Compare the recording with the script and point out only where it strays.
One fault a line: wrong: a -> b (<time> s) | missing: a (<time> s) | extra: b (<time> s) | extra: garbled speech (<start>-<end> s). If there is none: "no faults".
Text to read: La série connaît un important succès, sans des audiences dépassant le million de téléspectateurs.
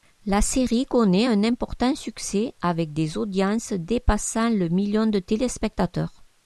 wrong: sans -> avec (2.6 s)